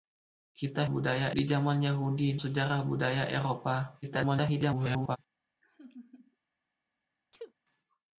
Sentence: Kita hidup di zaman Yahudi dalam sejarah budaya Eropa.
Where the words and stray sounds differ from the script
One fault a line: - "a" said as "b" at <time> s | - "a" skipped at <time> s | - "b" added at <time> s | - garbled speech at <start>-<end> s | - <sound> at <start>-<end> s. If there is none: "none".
- "hidup" said as "budaya" at 0.9 s
- "dalam" skipped at 2.4 s
- garbled speech at 4.0-5.2 s
- laugh at 5.6-6.4 s
- sneeze at 7.3-7.5 s